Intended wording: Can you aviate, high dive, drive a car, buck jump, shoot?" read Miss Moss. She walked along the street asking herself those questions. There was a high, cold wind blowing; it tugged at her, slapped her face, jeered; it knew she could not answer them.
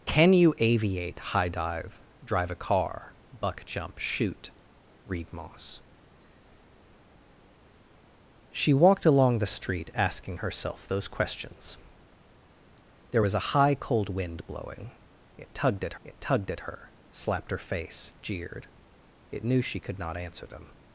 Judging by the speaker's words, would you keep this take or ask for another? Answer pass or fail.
fail